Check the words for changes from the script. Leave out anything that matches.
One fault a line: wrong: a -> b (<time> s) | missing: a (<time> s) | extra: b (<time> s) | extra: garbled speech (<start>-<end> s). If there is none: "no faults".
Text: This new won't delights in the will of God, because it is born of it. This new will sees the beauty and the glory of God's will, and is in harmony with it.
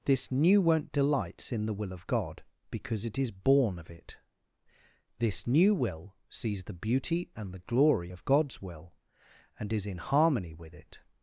no faults